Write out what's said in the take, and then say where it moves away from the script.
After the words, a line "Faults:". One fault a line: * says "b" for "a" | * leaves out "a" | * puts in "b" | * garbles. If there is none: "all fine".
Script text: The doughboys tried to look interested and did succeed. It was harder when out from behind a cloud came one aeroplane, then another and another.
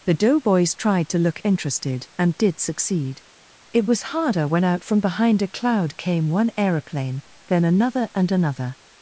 The doughboys tried to look interested and did succeed. It was harder when out from behind a cloud came one aeroplane, then another and another.
Faults:
all fine